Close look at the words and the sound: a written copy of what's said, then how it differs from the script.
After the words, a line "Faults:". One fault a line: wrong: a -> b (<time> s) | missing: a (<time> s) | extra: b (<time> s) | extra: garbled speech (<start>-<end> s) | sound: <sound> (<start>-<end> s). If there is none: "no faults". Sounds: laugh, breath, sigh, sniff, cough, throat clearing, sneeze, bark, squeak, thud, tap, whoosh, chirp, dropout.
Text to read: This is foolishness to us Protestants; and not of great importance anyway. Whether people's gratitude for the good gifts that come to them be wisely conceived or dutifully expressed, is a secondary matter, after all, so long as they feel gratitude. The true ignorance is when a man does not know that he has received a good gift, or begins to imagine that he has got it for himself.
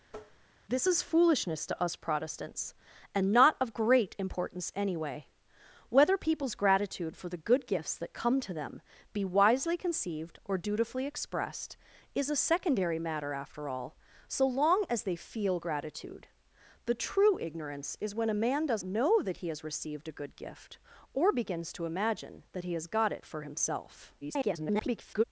This is foolishness to us Protestants; and not of great importance anyway. Whether people's gratitude for the good gifts that come to them be wisely conceived or dutifully expressed, is a secondary matter, after all, so long as they feel gratitude. The true ignorance is when a man does know that he has received a good gift, or begins to imagine that he has got it for himself. [garbled]
Faults:
sound: tap (0.1-0.5 s)
missing: not (18.8 s)
extra: garbled speech (24.2-25.2 s)